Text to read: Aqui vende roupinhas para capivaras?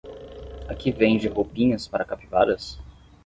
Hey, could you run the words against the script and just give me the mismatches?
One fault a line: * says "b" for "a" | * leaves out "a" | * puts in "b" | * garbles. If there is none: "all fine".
all fine